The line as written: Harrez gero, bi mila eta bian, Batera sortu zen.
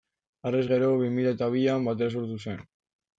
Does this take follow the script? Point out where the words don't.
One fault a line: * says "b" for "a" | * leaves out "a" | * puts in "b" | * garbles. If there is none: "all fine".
all fine